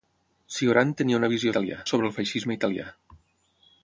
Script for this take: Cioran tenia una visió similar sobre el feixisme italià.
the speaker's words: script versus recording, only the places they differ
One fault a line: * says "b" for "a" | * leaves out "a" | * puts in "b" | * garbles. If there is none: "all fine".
* says "italià" for "similar"